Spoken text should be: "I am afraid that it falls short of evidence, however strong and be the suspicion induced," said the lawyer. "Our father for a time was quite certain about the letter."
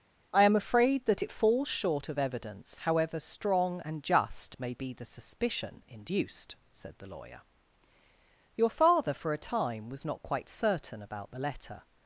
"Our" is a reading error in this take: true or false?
true